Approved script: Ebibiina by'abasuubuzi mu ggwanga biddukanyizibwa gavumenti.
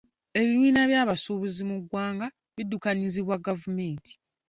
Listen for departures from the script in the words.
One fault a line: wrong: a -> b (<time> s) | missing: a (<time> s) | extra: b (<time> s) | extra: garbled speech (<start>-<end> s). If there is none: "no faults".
no faults